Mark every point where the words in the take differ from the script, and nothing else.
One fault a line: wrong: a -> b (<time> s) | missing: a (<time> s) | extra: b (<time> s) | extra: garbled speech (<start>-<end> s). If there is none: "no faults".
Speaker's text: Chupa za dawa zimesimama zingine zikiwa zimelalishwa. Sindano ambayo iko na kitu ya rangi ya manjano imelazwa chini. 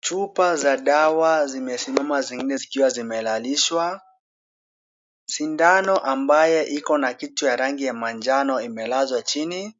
no faults